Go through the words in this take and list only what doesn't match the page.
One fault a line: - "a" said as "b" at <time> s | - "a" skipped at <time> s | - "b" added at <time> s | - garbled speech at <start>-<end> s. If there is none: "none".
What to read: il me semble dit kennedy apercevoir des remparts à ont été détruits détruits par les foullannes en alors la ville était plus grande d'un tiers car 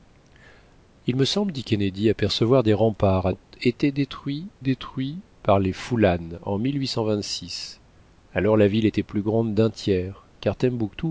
none